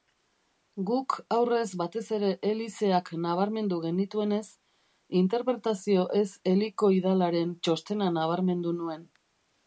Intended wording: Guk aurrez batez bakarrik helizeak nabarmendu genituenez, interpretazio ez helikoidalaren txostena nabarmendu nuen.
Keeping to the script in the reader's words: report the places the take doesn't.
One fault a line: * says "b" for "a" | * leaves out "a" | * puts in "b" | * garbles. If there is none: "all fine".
* says "ere" for "bakarrik"